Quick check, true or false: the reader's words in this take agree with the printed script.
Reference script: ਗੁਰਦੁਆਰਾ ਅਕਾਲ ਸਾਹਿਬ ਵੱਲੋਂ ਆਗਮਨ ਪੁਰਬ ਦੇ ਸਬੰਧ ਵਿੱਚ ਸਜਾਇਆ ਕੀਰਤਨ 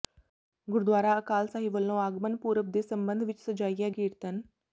true